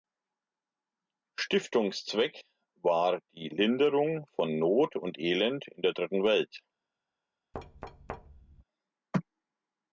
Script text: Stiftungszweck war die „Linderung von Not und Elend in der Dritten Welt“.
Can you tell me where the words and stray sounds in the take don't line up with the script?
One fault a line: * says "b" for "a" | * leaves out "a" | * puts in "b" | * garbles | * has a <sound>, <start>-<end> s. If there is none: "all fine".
* has a thud, 7.5-8.6 s